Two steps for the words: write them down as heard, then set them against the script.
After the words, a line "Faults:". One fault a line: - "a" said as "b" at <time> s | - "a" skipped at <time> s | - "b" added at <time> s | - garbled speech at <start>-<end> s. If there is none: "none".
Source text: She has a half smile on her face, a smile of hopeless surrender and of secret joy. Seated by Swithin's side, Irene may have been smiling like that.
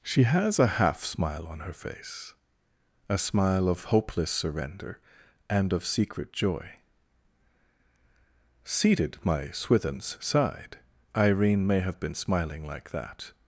She has a half smile on her face, a smile of hopeless surrender and of secret joy. Seated my Swithin's side, Irene may have been smiling like that.
Faults:
- "by" said as "my" at 9.2 s